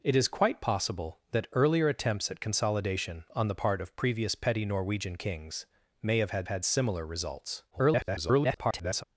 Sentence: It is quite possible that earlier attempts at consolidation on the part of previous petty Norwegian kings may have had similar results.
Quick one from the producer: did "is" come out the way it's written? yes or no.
yes